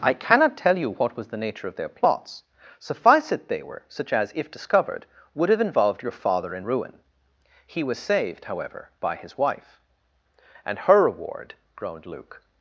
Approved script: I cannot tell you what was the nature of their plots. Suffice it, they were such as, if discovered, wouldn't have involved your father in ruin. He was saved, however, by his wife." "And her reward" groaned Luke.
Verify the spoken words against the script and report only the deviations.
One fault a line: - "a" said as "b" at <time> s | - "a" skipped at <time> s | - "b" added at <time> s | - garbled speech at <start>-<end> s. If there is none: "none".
- "wouldn't" said as "would" at 5.3 s